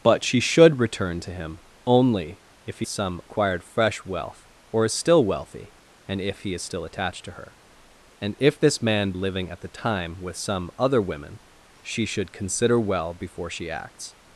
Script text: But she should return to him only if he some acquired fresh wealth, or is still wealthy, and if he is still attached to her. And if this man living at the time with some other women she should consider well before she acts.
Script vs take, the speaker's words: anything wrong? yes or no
no